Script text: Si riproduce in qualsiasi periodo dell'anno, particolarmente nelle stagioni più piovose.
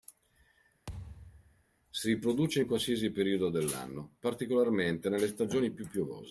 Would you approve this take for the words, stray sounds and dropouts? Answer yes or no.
no